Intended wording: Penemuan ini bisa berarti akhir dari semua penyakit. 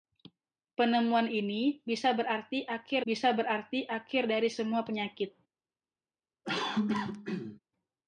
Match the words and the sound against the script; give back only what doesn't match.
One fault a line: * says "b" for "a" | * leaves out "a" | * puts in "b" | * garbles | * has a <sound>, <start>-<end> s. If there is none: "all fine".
* puts in "bisa berarti akhir"
* has a cough, 6.4-7.6 s